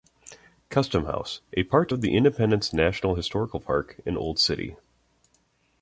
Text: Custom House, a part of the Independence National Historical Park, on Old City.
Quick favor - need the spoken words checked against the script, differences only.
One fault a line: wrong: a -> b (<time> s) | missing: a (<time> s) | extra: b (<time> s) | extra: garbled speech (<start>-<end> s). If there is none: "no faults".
wrong: on -> in (4.1 s)